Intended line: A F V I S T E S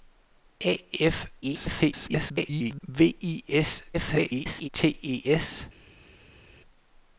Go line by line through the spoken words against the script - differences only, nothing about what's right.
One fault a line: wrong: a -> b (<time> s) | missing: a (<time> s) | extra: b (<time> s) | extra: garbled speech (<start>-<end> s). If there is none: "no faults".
extra: garbled speech (1.4-2.8 s)
extra: garbled speech (3.9-4.7 s)